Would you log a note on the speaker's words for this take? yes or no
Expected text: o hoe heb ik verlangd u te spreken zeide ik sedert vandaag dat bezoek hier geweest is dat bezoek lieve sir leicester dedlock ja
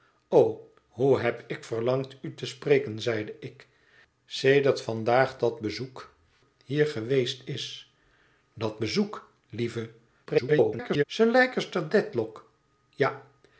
yes